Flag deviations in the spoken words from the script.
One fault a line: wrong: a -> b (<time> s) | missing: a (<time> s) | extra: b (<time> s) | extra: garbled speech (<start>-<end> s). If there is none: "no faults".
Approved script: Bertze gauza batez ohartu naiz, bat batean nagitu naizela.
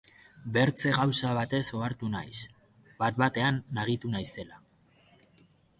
no faults